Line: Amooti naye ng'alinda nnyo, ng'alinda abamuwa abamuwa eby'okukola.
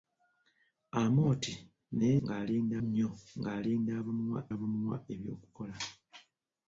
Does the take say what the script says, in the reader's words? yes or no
yes